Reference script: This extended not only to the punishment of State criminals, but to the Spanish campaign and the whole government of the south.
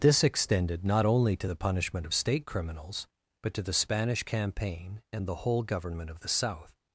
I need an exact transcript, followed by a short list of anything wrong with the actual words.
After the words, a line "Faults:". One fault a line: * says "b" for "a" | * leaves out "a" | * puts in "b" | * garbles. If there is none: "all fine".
This extended not only to the punishment of State criminals, but to the Spanish campaign and the whole government of the south.
Faults:
all fine